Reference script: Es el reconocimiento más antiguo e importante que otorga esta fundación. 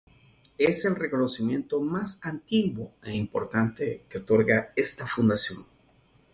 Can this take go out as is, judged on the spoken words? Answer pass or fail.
pass